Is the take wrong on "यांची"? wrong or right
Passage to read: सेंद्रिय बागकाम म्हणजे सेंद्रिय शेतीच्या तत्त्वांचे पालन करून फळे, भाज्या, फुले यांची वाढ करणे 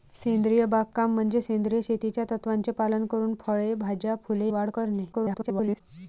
wrong